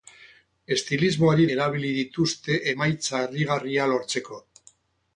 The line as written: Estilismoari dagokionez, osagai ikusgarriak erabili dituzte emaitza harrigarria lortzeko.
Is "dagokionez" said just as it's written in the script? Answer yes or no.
no